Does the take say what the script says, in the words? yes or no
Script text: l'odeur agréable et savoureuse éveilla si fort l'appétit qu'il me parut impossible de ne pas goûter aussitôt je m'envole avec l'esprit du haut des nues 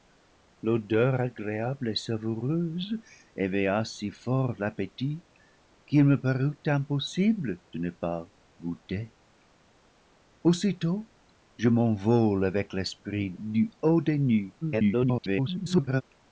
no